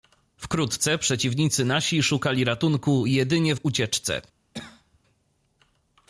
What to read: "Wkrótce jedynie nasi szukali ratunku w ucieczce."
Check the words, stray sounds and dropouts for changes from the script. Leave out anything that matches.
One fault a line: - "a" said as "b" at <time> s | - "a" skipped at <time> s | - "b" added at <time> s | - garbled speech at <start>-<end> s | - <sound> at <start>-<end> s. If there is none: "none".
- "jedynie" said as "przeciwnicy" at 1.0 s
- "jedynie" added at 3.0 s
- cough at 4.5-5.0 s